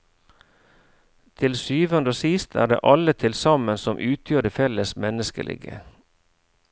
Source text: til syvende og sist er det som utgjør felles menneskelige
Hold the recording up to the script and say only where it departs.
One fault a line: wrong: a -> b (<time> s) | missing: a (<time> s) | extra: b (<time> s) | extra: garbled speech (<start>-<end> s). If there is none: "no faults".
extra: alle til sammen (2.8 s)
extra: det (4.4 s)